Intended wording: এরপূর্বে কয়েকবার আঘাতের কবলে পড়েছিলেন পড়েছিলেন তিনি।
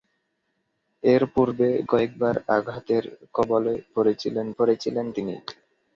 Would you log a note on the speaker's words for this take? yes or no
no